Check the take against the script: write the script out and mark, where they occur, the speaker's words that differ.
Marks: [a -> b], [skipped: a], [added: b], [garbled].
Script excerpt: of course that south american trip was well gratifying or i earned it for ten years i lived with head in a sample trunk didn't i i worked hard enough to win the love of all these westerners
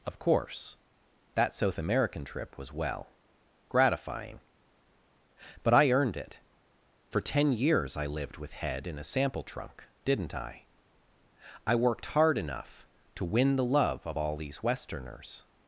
of course that south american trip was well gratifying [or -> but] i earned it for ten years i lived with head in a sample trunk didn't i i worked hard enough to win the love of all these westerners